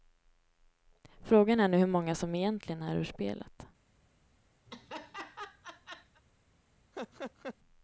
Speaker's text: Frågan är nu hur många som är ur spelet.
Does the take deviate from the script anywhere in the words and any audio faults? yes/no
yes